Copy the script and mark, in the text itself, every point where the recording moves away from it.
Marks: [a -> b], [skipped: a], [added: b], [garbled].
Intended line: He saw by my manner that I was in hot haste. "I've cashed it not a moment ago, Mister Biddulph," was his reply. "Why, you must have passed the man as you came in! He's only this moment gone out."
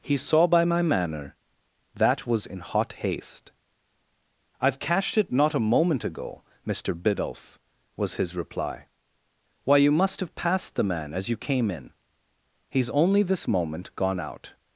He saw by my manner that [skipped: I] was in hot haste. "I've cashed it not a moment ago, Mister Biddulph," was his reply. "Why, you must have passed the man as you came in! He's only this moment gone out."